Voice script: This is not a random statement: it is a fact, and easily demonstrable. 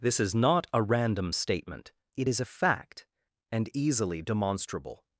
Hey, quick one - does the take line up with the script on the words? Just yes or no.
yes